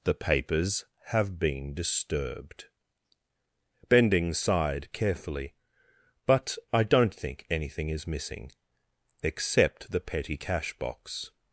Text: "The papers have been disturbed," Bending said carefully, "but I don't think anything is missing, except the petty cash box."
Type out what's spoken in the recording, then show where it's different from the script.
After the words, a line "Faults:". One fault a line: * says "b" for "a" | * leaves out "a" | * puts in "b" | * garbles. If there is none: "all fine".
"The papers have been disturbed," Bending sighed carefully, "but I don't think anything is missing, except the petty cash box."
Faults:
* says "sighed" for "said"